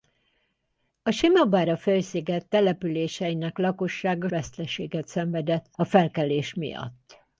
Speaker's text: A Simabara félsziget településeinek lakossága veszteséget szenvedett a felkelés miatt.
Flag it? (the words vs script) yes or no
no